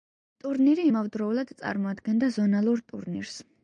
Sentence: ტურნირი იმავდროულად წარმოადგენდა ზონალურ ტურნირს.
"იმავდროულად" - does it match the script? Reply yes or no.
yes